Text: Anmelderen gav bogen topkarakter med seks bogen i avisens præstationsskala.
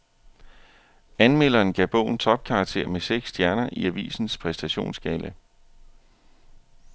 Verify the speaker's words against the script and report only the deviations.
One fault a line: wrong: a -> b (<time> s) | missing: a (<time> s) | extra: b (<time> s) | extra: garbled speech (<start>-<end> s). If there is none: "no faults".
wrong: bogen -> stjerner (3.3 s)